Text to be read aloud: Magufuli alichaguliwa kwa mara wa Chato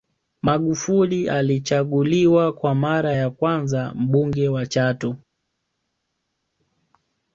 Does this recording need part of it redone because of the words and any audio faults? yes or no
yes